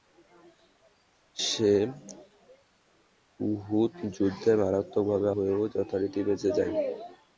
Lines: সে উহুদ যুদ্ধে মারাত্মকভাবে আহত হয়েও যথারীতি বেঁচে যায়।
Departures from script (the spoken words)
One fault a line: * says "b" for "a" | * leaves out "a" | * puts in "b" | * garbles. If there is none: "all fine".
* leaves out "আহত"